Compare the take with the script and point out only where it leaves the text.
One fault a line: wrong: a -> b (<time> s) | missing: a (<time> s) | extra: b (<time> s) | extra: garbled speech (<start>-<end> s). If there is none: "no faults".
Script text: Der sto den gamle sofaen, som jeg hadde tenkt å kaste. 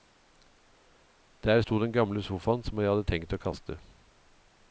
no faults